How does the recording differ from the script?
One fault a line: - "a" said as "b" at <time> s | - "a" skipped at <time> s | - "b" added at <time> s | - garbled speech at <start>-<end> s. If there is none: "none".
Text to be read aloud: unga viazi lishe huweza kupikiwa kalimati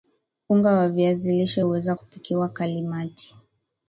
- "wa" added at 0.7 s